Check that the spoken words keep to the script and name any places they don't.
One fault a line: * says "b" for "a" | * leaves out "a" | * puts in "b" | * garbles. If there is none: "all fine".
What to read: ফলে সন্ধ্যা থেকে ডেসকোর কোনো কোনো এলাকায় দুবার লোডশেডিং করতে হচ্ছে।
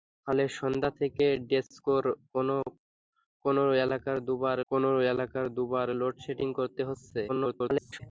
* puts in "কোনো এলাকায় দুবার"
* garbles